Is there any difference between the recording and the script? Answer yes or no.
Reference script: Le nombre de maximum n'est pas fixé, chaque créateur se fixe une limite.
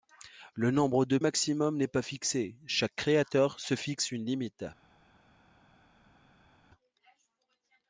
no